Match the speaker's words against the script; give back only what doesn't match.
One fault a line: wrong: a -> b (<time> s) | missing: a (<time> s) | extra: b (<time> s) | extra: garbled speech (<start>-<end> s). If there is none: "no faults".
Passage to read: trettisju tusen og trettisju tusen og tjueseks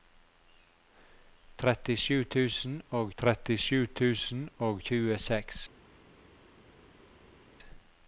no faults